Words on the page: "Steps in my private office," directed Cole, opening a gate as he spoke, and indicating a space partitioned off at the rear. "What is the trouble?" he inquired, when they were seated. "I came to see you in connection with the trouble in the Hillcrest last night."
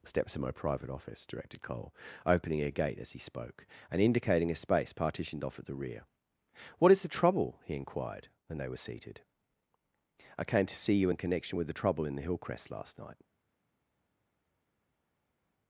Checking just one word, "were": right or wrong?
right